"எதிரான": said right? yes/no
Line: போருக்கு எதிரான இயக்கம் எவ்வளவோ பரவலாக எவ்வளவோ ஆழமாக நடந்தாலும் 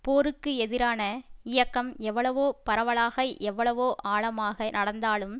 yes